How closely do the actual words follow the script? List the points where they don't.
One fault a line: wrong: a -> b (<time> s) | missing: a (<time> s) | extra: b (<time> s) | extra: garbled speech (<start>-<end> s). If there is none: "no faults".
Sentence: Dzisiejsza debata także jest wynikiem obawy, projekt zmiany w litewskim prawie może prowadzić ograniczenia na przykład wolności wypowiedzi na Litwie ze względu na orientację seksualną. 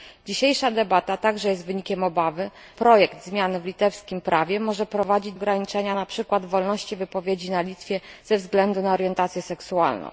no faults